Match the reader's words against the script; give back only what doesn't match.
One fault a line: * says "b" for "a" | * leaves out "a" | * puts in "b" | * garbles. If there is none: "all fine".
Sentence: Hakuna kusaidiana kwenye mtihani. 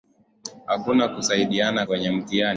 all fine